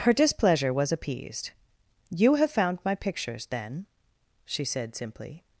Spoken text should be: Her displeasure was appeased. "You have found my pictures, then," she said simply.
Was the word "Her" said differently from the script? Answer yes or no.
no